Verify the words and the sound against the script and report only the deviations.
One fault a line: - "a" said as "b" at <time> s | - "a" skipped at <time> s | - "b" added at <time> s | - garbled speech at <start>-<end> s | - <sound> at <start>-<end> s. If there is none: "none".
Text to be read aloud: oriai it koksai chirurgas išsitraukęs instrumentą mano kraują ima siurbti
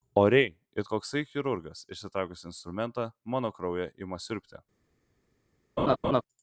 - laugh at 5.8-6.2 s